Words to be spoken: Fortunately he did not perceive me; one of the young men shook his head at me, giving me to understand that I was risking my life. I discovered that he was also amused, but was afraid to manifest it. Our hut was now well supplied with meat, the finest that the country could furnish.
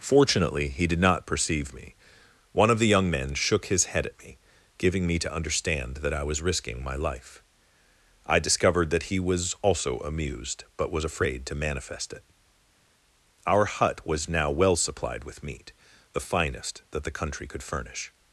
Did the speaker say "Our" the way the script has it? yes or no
yes